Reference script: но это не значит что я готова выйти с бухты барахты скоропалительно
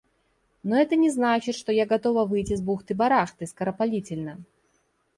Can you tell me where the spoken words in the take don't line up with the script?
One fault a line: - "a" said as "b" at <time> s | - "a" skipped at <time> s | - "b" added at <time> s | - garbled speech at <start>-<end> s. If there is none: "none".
none